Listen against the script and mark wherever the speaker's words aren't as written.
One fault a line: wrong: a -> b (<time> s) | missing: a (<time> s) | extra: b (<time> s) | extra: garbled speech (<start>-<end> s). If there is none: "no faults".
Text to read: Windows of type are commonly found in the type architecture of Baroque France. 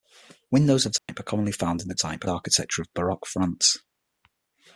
no faults